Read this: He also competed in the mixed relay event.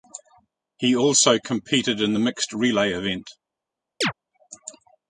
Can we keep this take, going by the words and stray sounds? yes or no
no